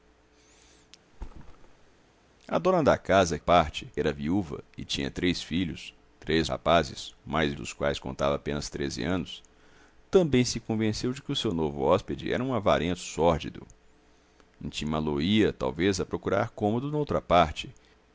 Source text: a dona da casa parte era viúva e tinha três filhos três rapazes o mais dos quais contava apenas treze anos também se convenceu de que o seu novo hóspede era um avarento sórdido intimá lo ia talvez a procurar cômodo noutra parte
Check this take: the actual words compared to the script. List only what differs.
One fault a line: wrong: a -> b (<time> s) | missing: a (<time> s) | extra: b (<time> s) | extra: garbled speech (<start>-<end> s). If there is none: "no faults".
no faults